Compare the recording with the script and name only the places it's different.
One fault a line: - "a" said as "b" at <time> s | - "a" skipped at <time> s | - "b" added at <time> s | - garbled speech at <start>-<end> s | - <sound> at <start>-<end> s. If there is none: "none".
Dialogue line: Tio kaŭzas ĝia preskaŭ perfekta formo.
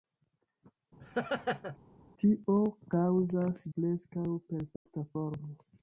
- laugh at 1.0-1.8 s
- "ĝia" skipped at 3.6 s
- dropout at 4.8-4.9 s